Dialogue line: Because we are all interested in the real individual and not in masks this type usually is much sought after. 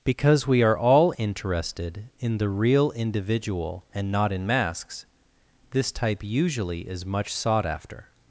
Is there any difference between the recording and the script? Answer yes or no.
no